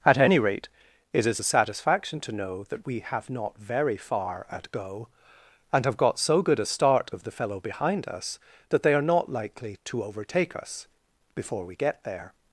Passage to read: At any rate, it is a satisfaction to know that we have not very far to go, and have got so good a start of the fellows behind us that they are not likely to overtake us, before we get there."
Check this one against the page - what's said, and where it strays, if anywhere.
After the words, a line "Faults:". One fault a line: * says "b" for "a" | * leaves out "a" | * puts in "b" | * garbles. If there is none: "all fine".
At any rate, it is a satisfaction to know that we have not very far at go, and have got so good a start of the fellow behind us that they are not likely to overtake us, before we get there."
Faults:
* says "at" for "to"
* says "fellow" for "fellows"